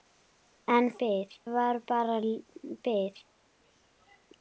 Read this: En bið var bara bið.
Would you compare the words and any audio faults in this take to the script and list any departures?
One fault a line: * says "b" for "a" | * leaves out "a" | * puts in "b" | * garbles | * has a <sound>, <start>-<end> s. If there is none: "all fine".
all fine